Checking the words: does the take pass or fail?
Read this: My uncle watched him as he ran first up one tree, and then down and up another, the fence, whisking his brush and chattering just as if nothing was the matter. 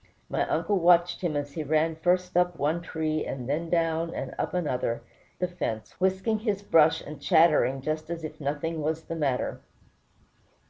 pass